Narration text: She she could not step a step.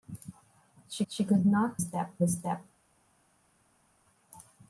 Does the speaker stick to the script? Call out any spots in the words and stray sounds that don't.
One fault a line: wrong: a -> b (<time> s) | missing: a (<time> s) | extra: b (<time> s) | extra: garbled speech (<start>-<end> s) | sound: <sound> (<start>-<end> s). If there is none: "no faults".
no faults